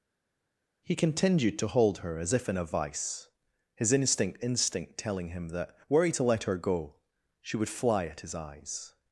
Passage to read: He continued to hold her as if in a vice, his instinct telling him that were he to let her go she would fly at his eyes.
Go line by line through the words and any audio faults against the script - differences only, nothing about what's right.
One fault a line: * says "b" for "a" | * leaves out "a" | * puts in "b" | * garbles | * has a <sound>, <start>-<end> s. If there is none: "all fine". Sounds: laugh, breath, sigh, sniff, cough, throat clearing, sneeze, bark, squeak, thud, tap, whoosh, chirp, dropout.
* puts in "instinct"